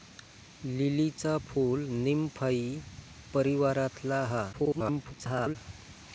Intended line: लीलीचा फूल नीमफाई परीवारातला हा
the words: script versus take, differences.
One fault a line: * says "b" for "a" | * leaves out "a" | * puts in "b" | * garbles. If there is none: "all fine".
* garbles